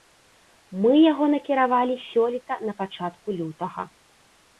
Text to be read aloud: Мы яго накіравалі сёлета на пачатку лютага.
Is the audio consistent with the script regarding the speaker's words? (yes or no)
yes